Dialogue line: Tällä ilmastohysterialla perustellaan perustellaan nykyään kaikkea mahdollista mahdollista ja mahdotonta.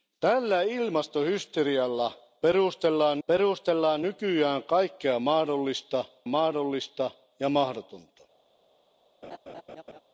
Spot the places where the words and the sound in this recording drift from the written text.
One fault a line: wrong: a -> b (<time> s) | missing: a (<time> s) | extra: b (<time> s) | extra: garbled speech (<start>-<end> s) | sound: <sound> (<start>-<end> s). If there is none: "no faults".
sound: laugh (9.2-10.0 s)